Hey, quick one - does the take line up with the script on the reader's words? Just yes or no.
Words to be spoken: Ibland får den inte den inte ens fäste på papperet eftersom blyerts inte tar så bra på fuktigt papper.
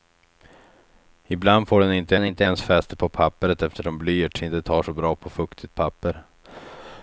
yes